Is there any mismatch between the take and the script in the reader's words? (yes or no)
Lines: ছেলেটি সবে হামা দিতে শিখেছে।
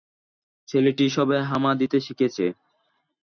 no